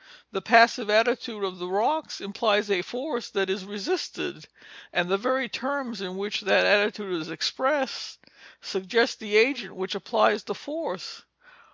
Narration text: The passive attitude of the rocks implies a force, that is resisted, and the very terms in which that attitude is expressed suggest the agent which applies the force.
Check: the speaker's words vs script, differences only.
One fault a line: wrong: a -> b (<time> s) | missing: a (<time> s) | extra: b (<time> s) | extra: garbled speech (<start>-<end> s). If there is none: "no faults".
no faults